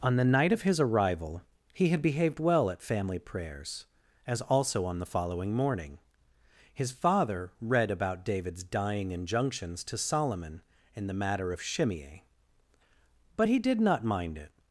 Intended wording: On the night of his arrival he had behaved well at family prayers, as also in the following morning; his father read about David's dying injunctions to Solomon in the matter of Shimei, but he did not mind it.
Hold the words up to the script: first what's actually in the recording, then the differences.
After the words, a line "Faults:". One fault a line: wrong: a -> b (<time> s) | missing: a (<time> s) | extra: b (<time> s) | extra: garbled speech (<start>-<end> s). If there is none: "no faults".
On the night of his arrival he had behaved well at family prayers, as also on the following morning; his father read about David's dying injunctions to Solomon in the matter of Shimei, but he did not mind it.
Faults:
wrong: in -> on (4.8 s)